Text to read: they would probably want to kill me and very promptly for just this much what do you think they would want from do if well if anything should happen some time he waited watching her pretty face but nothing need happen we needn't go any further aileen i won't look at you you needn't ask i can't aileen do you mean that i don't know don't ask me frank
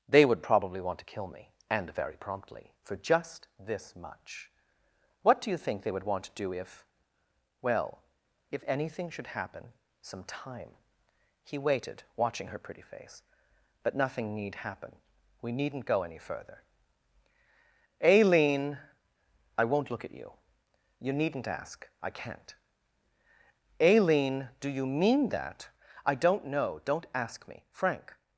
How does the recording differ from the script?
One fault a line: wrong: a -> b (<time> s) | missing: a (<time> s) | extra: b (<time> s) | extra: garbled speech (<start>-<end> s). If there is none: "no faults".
wrong: from -> to (6.2 s)